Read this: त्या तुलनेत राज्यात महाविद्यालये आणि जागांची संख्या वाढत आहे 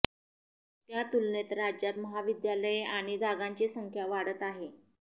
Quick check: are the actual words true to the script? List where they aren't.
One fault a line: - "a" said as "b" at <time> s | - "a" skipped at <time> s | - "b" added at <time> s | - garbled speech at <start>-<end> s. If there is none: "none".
none